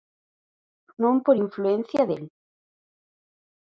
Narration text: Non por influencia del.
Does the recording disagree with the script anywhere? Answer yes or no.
no